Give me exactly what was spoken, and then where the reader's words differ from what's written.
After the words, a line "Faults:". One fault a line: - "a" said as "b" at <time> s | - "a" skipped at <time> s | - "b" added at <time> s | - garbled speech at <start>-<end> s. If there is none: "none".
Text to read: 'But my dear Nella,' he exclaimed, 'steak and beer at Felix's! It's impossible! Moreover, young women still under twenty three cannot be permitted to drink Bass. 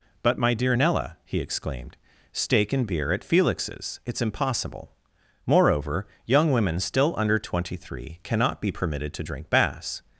'But my dear Nella,' he exclaimed, 'steak and beer at Felix's! It's impossible! Moreover, young women still under twenty three cannot be permitted to drink Bass.
Faults:
none